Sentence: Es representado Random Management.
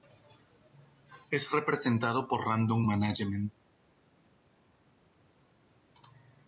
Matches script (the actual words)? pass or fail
fail